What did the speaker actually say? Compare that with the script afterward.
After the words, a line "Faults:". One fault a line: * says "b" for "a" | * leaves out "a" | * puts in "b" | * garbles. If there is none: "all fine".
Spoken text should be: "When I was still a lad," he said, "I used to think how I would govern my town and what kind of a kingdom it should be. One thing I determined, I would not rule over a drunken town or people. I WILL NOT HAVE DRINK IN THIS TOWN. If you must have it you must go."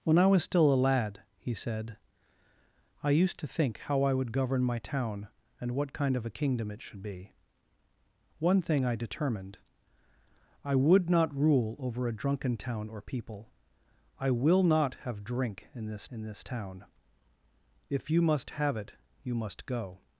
"When I was still a lad," he said, "I used to think how I would govern my town and what kind of a kingdom it should be. One thing I determined, I would not rule over a drunken town or people. I WILL NOT HAVE DRINK IN THIS IN THIS TOWN. If you must have it you must go."
Faults:
* puts in "IN THIS"